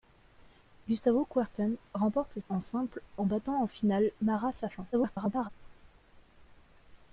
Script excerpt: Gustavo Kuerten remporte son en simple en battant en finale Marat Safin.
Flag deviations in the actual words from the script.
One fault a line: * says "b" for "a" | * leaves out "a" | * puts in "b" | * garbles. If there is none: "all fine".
* leaves out "son"
* garbles